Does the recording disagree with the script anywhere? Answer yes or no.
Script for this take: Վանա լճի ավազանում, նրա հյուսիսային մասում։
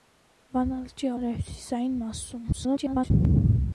yes